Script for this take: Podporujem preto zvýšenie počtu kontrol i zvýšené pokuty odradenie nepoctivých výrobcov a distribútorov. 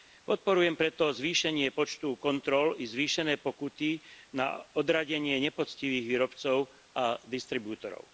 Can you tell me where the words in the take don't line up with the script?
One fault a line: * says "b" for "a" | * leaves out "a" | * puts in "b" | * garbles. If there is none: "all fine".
* puts in "na"